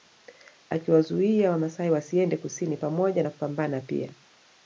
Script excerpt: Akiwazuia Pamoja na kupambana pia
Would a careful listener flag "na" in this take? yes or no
no